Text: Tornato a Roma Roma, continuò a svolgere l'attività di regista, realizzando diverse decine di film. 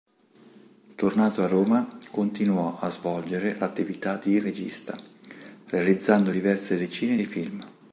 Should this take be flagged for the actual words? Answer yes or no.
yes